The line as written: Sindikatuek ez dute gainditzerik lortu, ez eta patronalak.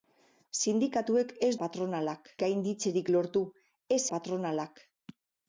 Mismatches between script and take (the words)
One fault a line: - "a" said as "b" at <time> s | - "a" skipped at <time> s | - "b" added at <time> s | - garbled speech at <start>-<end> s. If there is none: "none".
- "dute" said as "patronalak" at 1.6 s
- "eta" skipped at 4.0 s